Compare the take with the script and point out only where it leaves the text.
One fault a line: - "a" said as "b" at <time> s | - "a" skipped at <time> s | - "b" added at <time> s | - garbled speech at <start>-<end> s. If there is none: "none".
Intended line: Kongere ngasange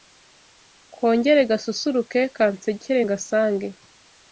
- "gasusuruke Kansekere" added at 1.5 s